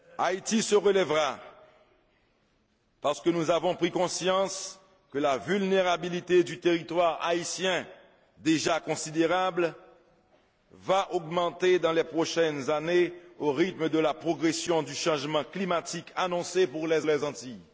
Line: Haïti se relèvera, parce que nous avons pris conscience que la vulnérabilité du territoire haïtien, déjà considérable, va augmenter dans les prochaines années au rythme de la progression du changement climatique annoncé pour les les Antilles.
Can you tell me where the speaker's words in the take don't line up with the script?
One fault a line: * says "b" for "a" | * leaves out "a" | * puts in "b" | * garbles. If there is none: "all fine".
all fine